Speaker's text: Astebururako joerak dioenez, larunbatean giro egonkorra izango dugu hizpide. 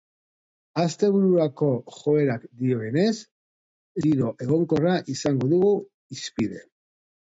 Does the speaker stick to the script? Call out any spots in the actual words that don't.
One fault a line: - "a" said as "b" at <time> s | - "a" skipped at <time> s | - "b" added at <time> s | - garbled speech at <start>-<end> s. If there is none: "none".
- "larunbatean" skipped at 3.1 s